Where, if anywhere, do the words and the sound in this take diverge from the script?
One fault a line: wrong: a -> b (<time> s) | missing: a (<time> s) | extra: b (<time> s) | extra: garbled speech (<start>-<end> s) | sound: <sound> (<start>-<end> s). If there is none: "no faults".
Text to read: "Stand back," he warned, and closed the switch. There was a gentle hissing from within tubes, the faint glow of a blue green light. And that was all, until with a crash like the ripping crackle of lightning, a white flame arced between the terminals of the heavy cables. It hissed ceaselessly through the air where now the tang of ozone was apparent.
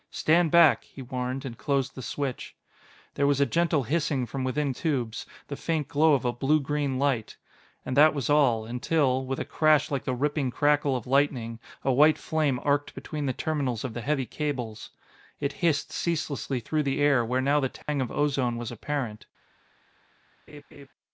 sound: dropout (17.8-17.9 s)
sound: laugh (20.5-20.9 s)